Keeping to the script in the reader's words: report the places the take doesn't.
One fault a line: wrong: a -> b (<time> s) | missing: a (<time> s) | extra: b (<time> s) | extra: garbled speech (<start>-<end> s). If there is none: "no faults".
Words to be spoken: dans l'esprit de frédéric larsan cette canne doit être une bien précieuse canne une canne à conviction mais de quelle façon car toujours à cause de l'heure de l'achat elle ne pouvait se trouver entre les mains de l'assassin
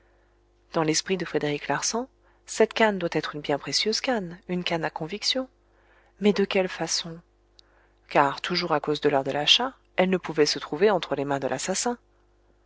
no faults